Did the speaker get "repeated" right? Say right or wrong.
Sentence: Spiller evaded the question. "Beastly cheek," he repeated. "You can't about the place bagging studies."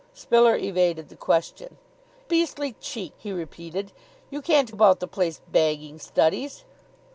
right